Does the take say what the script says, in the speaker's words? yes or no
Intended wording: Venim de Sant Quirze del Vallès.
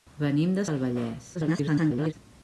no